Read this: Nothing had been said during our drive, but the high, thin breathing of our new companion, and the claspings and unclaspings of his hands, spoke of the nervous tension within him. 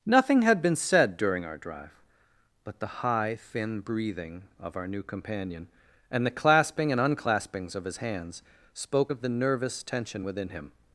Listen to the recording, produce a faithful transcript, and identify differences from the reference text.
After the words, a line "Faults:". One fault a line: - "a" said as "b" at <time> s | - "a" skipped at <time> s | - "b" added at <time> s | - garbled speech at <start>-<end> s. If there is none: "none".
Nothing had been said during our drive, but the high, thin breathing of our new companion, and the clasping and unclaspings of his hands, spoke of the nervous tension within him.
Faults:
- "claspings" said as "clasping" at 6.3 s